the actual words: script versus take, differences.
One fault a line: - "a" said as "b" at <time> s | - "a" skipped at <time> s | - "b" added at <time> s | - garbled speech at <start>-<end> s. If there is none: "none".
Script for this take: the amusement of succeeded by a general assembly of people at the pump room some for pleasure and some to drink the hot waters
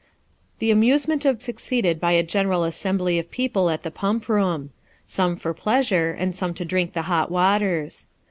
none